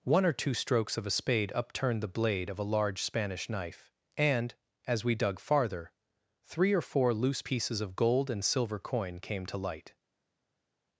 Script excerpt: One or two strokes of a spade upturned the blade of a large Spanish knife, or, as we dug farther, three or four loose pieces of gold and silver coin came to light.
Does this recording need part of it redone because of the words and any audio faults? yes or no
yes